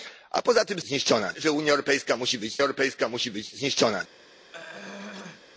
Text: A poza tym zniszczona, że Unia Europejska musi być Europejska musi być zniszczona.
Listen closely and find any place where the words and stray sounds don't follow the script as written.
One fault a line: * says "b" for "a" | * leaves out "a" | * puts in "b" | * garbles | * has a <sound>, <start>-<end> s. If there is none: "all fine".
* has a throat clearing, 4.5-5.4 s